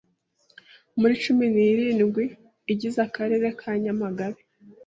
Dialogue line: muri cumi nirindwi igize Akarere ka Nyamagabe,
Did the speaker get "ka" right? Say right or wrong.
right